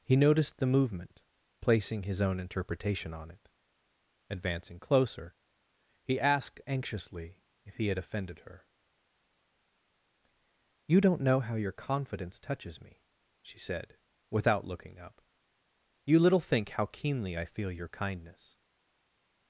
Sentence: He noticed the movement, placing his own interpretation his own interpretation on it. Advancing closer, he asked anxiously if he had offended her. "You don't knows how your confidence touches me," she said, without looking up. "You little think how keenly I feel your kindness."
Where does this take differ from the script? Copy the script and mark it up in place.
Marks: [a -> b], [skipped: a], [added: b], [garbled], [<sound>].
He noticed the movement, placing his own interpretation [skipped: his own interpretation] on it. Advancing closer, he asked anxiously if he had offended her. "You don't [knows -> know] how your confidence touches me," she said, without looking up. "You little think how keenly I feel your kindness."